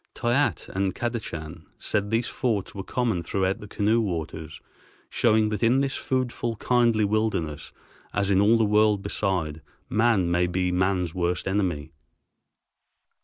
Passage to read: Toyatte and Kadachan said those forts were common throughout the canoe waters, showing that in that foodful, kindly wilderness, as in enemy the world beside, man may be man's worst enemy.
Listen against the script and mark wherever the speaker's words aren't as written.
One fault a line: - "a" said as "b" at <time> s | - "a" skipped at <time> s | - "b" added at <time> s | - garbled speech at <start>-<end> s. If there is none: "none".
- "those" said as "these" at 2.1 s
- "that" said as "this" at 5.8 s
- "enemy" said as "all" at 8.4 s